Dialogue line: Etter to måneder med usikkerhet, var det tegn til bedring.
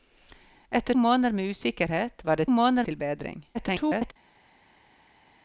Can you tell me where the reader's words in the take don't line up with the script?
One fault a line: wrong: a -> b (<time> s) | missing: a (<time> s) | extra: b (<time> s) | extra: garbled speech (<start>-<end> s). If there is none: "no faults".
missing: to (0.9 s)
wrong: tegn -> måneder (2.5 s)
extra: garbled speech (3.5-4.1 s)